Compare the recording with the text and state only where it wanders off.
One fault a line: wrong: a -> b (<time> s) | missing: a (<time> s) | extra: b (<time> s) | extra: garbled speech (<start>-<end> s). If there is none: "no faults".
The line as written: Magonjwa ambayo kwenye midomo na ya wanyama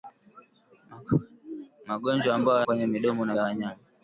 no faults